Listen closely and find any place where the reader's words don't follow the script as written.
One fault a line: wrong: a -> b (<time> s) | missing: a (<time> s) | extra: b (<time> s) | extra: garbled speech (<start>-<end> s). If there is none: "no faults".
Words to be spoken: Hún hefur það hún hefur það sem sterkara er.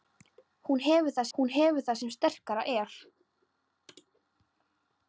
no faults